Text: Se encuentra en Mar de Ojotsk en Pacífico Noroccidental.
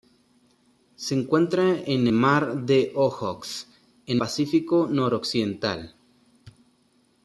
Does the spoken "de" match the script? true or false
true